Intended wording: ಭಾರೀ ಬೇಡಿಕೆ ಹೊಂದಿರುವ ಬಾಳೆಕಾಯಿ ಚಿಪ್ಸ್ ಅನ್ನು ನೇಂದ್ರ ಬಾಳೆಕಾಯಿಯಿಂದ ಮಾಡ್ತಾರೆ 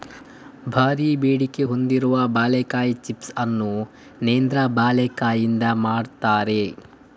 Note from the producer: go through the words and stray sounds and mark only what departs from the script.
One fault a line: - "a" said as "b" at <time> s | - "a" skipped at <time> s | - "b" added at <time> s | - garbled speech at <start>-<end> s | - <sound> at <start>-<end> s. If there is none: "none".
none